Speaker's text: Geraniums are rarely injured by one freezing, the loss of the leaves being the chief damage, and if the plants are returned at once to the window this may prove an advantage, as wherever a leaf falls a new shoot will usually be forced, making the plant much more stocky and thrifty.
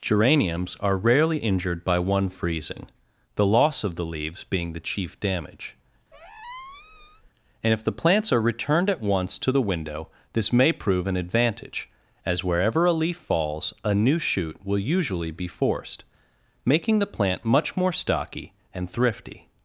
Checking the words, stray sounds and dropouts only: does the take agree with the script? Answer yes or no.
no